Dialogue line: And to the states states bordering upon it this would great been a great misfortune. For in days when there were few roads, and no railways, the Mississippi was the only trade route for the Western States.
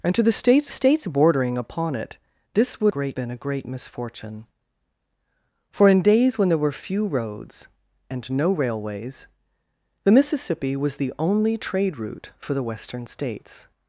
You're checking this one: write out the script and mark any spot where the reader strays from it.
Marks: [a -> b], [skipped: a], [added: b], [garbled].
And to the states states bordering upon it this would great been a great misfortune. For in days when there were few roads, and no railways, the Mississippi was the only trade route for the Western States.